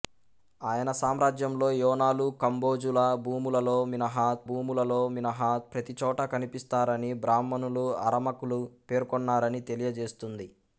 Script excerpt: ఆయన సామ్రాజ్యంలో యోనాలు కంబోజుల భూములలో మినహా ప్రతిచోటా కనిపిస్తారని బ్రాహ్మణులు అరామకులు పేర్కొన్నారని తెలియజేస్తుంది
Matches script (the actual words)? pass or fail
fail